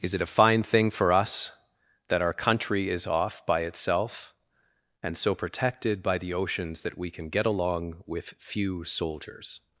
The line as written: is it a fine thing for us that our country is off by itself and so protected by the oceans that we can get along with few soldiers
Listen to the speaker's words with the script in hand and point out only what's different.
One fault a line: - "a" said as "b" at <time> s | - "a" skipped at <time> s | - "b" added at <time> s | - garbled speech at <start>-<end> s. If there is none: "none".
none